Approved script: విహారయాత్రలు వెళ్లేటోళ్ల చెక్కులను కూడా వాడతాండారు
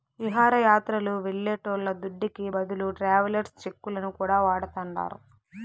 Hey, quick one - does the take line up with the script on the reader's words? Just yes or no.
no